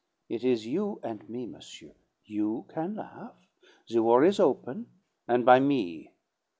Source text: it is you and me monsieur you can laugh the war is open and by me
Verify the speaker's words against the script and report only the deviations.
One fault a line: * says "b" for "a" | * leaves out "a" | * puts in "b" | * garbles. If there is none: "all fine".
all fine